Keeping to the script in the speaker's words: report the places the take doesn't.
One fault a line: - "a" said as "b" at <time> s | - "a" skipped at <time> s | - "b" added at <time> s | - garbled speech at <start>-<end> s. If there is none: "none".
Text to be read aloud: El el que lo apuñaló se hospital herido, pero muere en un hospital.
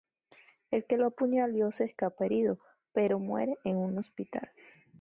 - "el" skipped at 0.9 s
- "hospital" said as "escapa" at 1.8 s